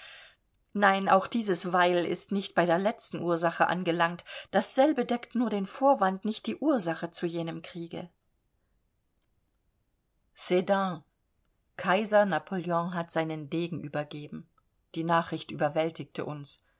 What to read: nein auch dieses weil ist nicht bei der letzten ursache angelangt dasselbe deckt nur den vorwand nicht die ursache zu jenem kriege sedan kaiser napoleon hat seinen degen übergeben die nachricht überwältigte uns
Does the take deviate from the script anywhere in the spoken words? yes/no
no